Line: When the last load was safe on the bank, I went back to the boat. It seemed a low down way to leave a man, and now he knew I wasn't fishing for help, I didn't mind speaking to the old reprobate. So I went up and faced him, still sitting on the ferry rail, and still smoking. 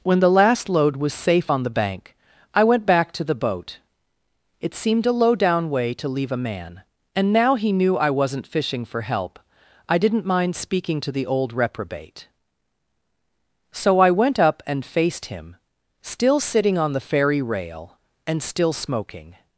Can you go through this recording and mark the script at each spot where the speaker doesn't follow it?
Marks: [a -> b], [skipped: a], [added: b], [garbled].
When the last load was safe on the bank, I went back to the boat. It seemed a low down way to leave a man, and now he knew I wasn't fishing for help, I didn't mind speaking to the old reprobate. So I went up and faced him, still sitting on the ferry rail, and still smoking.